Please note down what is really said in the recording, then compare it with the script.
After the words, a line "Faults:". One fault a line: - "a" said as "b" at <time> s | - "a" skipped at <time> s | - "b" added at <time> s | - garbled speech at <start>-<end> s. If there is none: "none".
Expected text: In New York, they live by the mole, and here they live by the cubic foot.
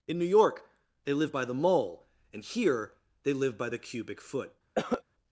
In New York, they live by the mole, and here they live by the cubic foot.
Faults:
none